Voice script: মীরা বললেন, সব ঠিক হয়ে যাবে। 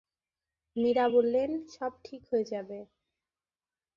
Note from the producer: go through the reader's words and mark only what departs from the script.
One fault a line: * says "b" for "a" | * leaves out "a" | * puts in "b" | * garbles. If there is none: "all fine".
all fine